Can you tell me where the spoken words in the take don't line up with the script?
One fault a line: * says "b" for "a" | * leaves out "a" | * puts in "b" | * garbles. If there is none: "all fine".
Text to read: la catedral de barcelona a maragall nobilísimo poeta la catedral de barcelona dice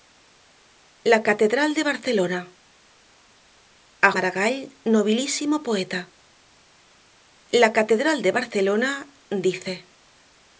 all fine